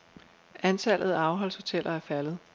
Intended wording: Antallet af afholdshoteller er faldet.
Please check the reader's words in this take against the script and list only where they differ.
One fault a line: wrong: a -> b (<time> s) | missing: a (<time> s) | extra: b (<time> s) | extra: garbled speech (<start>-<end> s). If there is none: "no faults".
no faults